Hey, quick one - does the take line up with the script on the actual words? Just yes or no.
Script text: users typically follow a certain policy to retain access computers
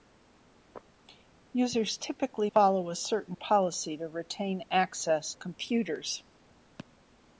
yes